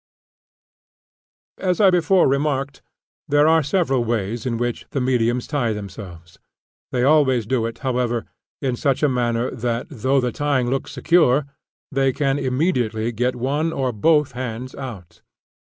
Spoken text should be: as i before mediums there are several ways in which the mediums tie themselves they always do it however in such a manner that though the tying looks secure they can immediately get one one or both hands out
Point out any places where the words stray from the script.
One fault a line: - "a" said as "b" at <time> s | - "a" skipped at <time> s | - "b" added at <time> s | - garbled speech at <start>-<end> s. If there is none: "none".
- "mediums" said as "remarked" at 2.3 s
- "one" skipped at 13.7 s